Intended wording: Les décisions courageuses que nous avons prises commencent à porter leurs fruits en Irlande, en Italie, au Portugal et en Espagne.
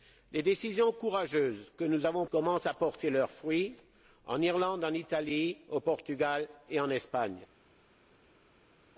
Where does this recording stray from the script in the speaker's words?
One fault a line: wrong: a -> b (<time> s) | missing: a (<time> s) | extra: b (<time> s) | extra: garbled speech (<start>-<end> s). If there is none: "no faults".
missing: prises (2.3 s)